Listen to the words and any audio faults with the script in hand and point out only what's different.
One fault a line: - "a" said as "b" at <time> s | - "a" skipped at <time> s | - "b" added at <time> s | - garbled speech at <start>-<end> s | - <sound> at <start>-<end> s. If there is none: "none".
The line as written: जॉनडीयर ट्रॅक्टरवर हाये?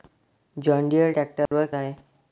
- dropout at 1.5-1.5 s